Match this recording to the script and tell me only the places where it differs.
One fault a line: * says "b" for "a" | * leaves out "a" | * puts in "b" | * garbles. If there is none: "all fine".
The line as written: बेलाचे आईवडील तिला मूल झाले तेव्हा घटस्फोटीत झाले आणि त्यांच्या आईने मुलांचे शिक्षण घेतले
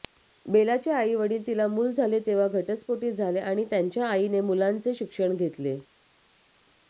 all fine